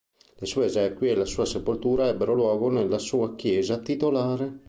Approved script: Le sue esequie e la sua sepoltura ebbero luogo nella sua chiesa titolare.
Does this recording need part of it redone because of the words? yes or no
no